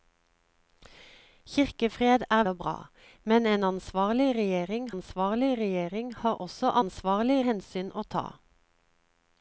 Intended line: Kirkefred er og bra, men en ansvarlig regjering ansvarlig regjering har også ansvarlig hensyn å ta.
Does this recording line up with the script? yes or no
yes